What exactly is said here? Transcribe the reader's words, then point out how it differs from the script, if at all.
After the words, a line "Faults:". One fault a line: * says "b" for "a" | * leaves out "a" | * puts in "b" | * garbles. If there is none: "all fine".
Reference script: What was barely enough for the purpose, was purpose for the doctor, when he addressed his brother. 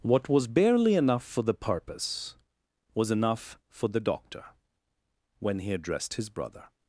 What was barely enough for the purpose, was enough for the doctor, when he addressed his brother.
Faults:
* says "enough" for "purpose"